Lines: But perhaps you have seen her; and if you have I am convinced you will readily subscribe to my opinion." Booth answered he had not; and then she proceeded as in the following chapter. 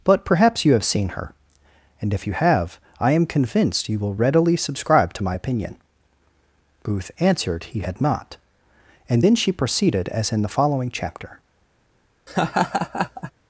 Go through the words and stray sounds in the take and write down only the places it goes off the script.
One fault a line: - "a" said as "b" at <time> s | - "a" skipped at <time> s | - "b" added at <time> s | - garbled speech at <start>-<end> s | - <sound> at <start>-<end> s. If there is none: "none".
- laugh at 12.3-13.3 s